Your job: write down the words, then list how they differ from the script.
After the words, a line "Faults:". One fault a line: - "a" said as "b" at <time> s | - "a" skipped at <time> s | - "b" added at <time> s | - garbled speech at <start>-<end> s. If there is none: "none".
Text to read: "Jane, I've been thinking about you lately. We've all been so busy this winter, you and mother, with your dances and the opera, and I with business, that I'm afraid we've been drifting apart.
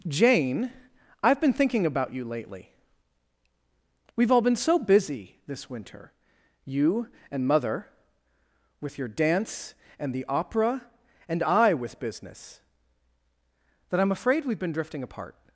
"Jane, I've been thinking about you lately. We've all been so busy this winter, you and mother, with your dance and the opera, and I with business, that I'm afraid we've been drifting apart.
Faults:
- "dances" said as "dance" at 9.1 s